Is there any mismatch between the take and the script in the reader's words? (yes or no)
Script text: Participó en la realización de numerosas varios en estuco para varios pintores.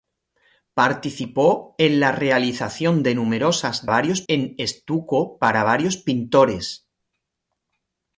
no